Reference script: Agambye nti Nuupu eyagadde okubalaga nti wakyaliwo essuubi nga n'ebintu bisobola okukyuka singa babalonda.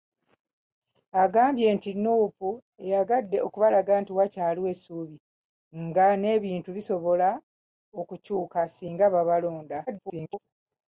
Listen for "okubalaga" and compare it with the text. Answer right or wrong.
right